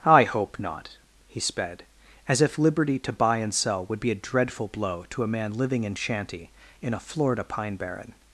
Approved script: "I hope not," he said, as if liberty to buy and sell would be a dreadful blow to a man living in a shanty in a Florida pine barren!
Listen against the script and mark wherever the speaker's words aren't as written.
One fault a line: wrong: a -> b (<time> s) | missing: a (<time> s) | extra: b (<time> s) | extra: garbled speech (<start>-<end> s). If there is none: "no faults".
wrong: said -> sped (1.4 s)
missing: a (6.0 s)